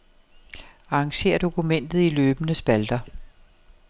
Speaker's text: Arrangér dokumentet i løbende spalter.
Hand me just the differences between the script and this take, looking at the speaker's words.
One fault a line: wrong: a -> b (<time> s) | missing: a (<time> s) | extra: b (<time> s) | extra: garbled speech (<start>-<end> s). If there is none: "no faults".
no faults